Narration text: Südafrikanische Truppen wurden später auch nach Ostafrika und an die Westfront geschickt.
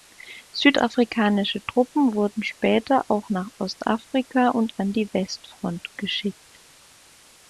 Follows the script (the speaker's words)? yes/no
yes